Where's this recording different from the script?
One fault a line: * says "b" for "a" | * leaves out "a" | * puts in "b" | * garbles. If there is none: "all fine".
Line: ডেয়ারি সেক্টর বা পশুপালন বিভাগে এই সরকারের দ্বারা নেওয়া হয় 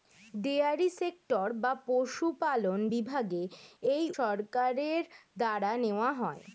all fine